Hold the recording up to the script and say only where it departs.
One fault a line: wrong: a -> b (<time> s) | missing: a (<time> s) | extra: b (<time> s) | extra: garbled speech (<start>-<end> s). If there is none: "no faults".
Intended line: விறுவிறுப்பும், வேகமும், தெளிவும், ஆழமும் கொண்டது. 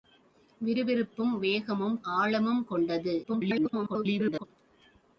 missing: தெளிவும் (2.0 s)
extra: garbled speech (3.2-4.4 s)